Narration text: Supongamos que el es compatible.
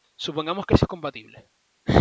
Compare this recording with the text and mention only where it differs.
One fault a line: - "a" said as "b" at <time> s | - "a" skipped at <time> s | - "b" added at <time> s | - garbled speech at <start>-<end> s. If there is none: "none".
none